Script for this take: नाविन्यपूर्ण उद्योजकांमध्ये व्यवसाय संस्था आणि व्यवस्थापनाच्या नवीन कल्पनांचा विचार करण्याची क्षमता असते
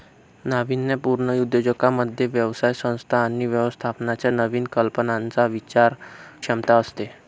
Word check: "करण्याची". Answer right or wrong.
wrong